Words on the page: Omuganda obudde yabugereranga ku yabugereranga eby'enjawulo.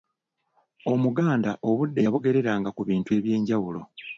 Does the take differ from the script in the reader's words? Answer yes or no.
yes